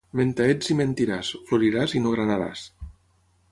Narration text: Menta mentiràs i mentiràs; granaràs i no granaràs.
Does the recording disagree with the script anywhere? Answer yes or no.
yes